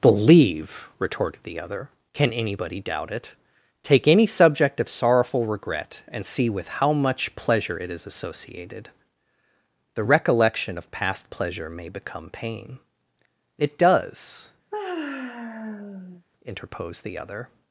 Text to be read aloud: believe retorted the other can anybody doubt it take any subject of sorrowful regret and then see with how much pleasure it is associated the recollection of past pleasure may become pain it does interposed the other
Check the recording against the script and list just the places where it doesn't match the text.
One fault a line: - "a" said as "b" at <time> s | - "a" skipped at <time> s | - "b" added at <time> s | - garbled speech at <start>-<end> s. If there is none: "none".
- "then" skipped at 6.2 s